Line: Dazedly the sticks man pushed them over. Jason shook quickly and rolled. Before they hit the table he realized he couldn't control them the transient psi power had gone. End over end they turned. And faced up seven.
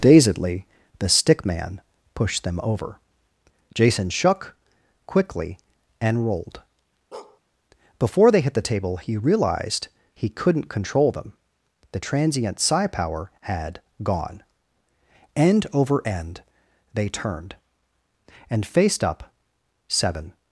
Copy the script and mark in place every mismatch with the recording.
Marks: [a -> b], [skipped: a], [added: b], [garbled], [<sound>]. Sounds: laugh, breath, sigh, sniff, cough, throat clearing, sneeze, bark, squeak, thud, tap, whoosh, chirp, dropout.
Dazedly the [sticks -> stick] man pushed them over. Jason shook quickly and rolled. [bark] Before they hit the table he realized he couldn't control them the transient psi power had gone. End over end they turned. And faced up seven.